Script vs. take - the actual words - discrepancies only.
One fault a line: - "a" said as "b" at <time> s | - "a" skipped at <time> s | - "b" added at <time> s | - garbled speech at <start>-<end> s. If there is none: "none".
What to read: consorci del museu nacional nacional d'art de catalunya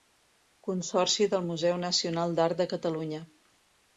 - "nacional" skipped at 2.4 s